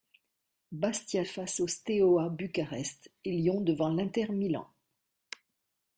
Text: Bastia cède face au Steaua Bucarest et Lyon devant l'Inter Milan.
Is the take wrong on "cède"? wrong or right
wrong